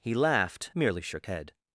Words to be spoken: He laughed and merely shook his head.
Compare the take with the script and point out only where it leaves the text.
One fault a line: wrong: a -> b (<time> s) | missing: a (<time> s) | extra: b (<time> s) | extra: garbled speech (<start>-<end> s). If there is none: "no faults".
missing: and (0.7 s)
missing: his (1.3 s)